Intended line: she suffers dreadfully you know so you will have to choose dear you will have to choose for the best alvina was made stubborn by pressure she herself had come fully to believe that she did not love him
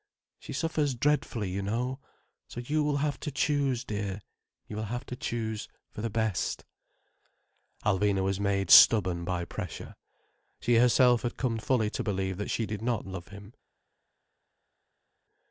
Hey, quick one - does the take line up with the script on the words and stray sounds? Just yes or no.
yes